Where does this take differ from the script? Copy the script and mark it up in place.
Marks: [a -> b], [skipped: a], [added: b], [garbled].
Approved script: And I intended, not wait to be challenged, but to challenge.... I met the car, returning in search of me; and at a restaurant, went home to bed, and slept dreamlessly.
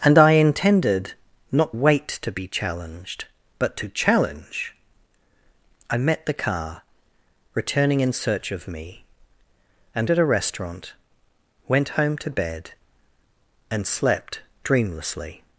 And I intended, not wait to be challenged, but to challenge.... I met the car, returning in search of me; and at a restaurant, went home to bed, and slept dreamlessly.